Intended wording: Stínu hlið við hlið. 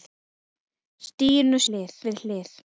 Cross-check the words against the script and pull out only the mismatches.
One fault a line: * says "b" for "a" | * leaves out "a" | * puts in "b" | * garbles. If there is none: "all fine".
all fine